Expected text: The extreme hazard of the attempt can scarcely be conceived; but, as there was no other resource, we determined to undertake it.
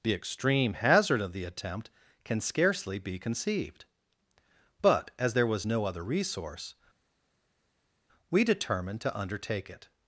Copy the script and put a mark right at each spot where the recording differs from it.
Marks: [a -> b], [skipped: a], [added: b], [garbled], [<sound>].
The extreme hazard of the attempt can scarcely be conceived; but, as there was no other resource, we determined to undertake it.